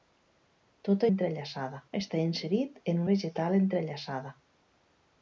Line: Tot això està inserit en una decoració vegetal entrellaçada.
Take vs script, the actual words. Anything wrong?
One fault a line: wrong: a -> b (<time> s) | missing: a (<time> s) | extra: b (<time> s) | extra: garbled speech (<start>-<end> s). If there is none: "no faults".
wrong: això -> entrellaçada (1.1 s)
missing: una decoració (3.0 s)